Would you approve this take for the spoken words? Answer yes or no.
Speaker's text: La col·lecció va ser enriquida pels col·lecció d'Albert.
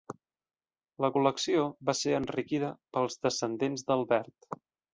no